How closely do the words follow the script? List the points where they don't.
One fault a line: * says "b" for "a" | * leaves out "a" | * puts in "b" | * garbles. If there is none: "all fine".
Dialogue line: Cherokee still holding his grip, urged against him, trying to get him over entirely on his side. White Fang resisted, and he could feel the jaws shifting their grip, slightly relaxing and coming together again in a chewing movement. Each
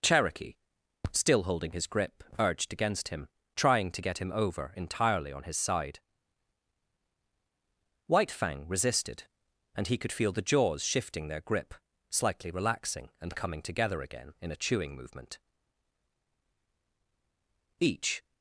all fine